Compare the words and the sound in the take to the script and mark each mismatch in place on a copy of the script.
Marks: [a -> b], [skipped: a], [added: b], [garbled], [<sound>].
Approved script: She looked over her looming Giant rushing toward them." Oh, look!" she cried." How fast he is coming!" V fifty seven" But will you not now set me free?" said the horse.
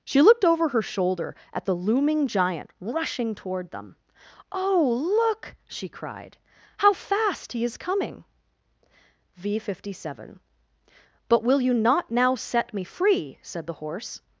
She looked over her [added: shoulder at the] looming Giant rushing toward them." Oh, look!" she cried." How fast he is coming!" V fifty seven" But will you not now set me free?" said the horse.